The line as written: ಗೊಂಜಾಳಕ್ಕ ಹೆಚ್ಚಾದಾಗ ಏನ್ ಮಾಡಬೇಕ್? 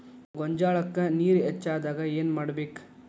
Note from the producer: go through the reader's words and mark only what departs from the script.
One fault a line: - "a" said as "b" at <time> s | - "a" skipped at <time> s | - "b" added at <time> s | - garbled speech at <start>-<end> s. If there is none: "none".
- "ನೇರ" added at 1.1 s